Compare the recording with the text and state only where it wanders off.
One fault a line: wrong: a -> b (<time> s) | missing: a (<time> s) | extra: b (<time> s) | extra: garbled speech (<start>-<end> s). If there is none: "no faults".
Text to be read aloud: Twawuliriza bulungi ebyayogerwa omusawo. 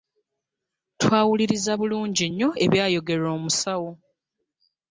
extra: nnyo (2.3 s)